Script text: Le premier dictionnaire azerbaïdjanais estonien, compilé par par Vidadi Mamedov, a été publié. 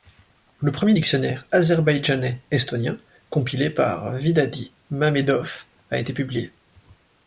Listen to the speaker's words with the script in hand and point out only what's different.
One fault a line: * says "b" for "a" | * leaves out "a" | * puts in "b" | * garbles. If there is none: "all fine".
* leaves out "par"